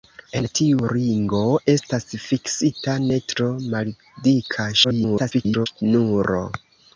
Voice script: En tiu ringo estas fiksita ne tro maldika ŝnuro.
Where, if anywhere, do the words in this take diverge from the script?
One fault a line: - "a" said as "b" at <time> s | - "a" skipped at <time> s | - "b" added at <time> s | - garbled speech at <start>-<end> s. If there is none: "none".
- garbled speech at 4.8-5.7 s